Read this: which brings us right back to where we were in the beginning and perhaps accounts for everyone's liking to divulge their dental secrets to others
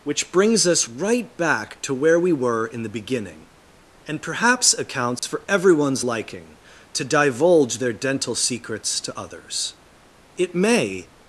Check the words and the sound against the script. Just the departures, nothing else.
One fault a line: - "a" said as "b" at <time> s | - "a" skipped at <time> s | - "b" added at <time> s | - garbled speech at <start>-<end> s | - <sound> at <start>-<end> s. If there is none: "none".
- dropout at 5.2-5.2 s
- "it may" added at 10.4 s